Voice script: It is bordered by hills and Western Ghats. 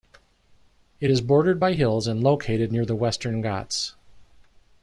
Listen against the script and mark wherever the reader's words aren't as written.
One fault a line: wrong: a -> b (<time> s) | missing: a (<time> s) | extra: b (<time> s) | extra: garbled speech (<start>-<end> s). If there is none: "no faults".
extra: located near the (2.2 s)